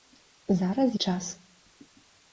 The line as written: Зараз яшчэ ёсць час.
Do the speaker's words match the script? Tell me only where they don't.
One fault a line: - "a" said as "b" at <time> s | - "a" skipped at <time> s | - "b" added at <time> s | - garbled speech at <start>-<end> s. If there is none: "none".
- "яшчэ ёсць" skipped at 0.9 s